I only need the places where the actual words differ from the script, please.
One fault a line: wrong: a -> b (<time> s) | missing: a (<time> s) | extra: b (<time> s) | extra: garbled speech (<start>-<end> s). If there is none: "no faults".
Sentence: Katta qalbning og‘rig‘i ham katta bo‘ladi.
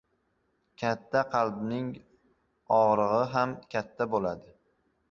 no faults